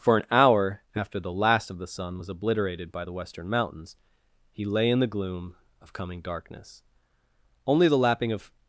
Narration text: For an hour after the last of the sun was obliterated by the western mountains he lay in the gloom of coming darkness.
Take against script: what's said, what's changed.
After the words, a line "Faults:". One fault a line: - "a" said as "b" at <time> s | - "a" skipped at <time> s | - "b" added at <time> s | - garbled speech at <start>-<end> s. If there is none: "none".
For an hour after the last of the sun was obliterated by the western mountains he lay in the gloom of coming darkness. Only the lapping of
Faults:
- "Only the lapping of" added at 7.6 s